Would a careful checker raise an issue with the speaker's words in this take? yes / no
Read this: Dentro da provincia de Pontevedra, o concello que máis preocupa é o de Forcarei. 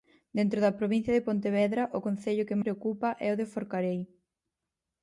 yes